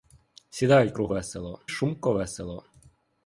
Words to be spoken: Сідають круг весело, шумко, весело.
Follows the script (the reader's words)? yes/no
yes